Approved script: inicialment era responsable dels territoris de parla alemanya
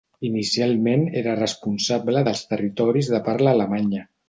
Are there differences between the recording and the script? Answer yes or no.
no